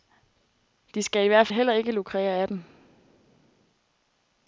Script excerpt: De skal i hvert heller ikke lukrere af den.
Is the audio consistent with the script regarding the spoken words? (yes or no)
yes